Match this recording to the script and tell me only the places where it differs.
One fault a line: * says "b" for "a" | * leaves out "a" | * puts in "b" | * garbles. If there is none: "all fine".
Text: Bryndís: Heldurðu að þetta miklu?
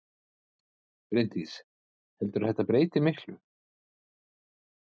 * puts in "breyti"